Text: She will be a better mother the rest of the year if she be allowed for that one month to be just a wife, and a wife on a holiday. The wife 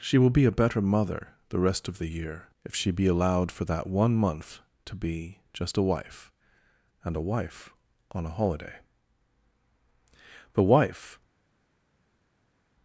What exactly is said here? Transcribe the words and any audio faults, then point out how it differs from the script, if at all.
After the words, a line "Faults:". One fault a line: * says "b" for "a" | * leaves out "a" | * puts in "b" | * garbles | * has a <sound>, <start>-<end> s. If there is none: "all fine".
She will be a better mother the rest of the year if she be allowed for that one month to be just a wife, and a wife on a holiday. The wife
Faults:
all fine